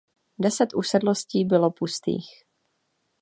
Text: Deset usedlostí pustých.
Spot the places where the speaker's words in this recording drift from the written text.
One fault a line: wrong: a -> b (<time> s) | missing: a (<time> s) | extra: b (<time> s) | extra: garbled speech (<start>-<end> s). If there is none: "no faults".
extra: bylo (1.4 s)